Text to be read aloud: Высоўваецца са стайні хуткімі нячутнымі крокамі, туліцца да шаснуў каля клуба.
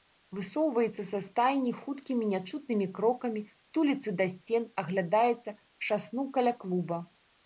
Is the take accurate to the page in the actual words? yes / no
no